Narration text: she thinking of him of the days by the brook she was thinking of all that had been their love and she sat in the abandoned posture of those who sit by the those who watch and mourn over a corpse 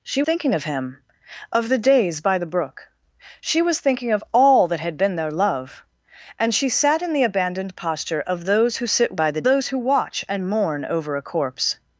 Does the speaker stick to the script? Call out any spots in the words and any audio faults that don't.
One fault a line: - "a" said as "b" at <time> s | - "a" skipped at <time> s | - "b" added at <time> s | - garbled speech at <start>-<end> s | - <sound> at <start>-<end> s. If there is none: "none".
none